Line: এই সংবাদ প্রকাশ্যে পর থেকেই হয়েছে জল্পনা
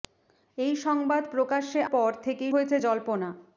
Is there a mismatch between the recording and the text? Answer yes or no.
no